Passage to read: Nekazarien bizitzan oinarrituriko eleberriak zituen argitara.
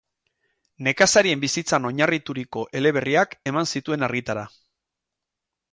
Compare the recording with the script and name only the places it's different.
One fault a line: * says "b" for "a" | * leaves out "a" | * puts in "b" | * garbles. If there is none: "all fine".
* puts in "eman"